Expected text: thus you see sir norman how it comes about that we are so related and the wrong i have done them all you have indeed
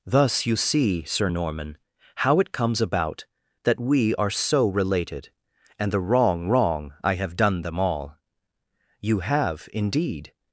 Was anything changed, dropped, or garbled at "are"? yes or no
no